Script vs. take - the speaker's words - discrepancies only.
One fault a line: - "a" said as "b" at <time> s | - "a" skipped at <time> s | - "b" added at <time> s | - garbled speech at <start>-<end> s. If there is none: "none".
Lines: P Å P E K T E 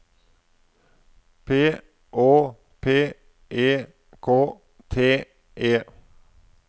none